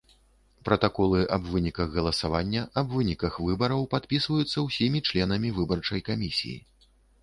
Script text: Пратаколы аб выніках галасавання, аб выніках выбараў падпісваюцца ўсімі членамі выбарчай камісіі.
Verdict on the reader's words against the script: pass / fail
pass